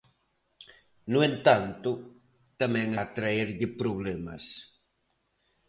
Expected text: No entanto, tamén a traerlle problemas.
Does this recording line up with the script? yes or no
yes